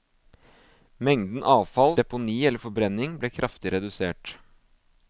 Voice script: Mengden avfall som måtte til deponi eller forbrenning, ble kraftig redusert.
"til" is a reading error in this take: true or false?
true